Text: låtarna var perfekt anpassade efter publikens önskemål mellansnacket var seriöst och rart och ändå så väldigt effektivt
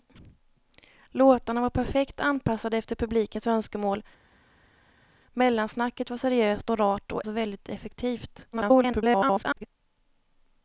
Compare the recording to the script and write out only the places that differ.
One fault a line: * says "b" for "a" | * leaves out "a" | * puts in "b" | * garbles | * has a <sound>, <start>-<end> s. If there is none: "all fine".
* leaves out "ändå"
* garbles